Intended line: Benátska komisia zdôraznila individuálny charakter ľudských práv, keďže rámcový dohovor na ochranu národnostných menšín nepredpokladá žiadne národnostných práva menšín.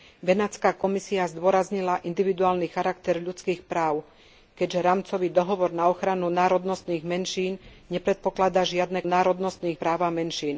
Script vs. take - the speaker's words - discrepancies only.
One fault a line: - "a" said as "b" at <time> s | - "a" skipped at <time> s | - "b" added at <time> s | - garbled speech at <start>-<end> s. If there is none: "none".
none